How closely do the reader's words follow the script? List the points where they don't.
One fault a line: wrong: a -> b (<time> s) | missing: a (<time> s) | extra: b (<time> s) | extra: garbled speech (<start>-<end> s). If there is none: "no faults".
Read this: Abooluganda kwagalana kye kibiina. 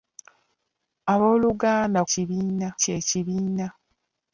wrong: kwagalana -> kibiina (2.1 s)